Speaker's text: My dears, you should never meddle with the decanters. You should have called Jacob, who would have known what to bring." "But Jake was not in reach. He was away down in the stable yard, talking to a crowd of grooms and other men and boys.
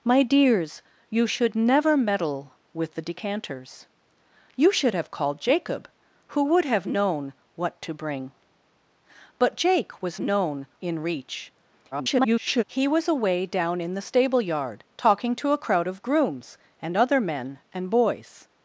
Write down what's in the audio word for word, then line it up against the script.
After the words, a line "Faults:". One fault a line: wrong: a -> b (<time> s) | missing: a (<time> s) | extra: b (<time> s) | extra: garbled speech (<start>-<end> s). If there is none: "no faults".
My dears, you should never meddle with the decanters. You should have called Jacob, who would have known what to bring." "But Jake was known in reach. [garbled] He was away down in the stable yard, talking to a crowd of grooms and other men and boys.
Faults:
wrong: not -> known (10.2 s)
extra: garbled speech (11.9-12.6 s)